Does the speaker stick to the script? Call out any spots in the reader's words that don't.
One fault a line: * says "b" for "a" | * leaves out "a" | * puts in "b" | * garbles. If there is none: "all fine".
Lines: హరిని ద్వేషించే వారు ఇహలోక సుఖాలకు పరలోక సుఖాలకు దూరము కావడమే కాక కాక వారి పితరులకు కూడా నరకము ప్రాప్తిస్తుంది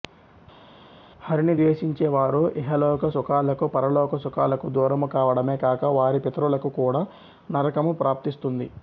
* leaves out "కాక"